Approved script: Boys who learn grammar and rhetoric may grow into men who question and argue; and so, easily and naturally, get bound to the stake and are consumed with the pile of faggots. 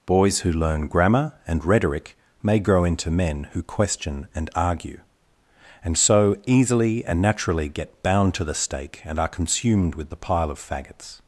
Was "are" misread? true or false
false